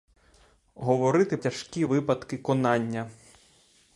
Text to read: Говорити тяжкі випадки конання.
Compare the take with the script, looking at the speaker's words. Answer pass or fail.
pass